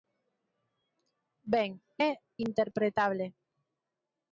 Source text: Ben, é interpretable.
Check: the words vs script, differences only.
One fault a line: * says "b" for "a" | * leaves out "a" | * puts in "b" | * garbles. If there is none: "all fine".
all fine